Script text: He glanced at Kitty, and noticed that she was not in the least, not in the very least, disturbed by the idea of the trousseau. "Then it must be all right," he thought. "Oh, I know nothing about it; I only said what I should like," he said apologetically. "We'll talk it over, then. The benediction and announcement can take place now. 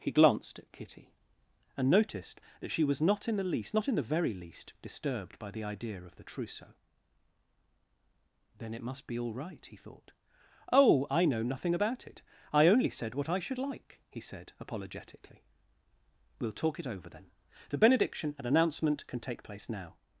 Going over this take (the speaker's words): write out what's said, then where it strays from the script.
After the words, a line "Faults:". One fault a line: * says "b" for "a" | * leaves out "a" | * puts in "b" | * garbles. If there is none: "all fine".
He glanced at Kitty, and noticed that she was not in the least, not in the very least, disturbed by the idea of the trousseau. "Then it must be all right," he thought. "Oh, I know nothing about it; I only said what I should like," he said apologetically. "We'll talk it over, then. The benediction and announcement can take place now.
Faults:
all fine